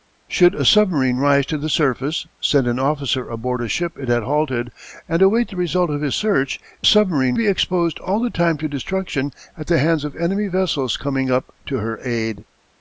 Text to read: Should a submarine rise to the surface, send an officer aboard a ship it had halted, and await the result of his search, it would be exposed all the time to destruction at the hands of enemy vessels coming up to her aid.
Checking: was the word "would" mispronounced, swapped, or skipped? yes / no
yes